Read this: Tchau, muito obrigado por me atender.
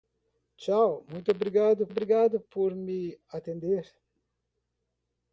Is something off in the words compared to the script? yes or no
yes